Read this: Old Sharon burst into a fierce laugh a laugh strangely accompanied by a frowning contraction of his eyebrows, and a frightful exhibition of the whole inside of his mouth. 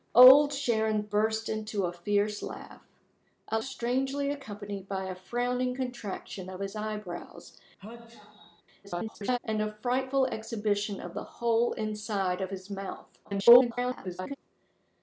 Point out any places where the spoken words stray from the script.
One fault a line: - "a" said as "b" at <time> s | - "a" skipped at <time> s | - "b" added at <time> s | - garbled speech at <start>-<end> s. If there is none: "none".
- "laugh" skipped at 3.6 s
- garbled speech at 8.8-9.4 s
- garbled speech at 13.2-14.4 s